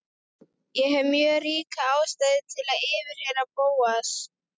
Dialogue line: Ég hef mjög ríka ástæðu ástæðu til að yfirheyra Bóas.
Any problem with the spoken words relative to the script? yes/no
yes